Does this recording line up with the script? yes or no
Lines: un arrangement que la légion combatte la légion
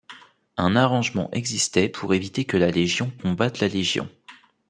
no